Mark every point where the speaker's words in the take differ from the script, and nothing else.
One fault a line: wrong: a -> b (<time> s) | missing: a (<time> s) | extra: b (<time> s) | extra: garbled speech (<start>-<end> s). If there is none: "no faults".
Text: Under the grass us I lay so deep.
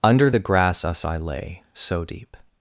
no faults